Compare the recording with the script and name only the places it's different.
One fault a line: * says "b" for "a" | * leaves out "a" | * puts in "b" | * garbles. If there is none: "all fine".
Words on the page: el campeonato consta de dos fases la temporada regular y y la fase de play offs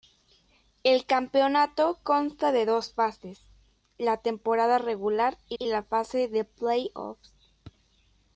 all fine